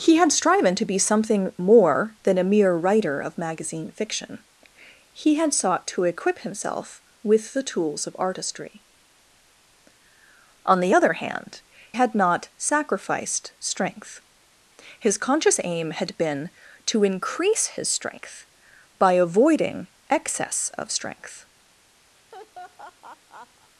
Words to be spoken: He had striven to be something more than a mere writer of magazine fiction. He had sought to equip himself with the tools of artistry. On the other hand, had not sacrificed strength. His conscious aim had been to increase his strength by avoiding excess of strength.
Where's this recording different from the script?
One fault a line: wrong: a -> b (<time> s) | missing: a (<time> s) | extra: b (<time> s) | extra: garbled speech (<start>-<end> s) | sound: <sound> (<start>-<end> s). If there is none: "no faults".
sound: laugh (22.2-23.7 s)